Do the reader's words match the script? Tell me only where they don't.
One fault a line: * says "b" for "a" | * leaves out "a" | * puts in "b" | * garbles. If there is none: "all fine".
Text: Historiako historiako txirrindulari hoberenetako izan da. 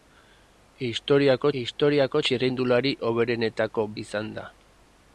all fine